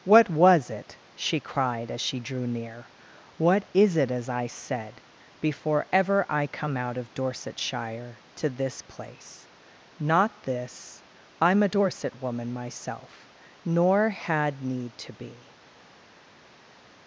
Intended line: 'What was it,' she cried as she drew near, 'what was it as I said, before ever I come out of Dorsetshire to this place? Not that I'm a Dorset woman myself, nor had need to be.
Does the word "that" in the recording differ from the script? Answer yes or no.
yes